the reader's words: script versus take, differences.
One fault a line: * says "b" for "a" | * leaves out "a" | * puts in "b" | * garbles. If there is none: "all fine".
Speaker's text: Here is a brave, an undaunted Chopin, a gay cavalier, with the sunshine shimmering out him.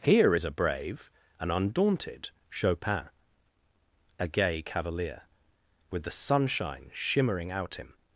all fine